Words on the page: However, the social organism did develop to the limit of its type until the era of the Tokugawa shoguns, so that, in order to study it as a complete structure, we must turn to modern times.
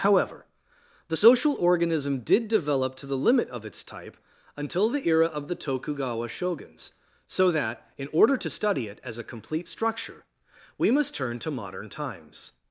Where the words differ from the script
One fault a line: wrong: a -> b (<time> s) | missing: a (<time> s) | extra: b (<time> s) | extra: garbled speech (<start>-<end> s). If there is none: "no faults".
no faults